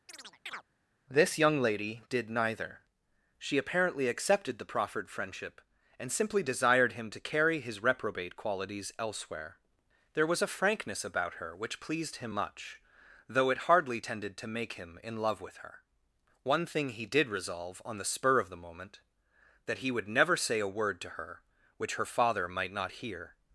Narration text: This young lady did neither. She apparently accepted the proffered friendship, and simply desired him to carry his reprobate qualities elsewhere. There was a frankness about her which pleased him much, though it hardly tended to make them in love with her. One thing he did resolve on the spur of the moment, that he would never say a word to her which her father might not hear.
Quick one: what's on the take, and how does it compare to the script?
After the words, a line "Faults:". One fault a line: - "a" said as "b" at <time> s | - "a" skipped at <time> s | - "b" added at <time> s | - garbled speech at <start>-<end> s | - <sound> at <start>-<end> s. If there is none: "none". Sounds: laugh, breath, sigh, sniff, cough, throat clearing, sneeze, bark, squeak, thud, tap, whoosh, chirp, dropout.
This young lady did neither. She apparently accepted the proffered friendship, and simply desired him to carry his reprobate qualities elsewhere. There was a frankness about her which pleased him much, though it hardly tended to make him in love with her. One thing he did resolve on the spur of the moment, that he would never say a word to her which her father might not hear.
Faults:
- chirp at 0.1-0.6 s
- "them" said as "him" at 14.7 s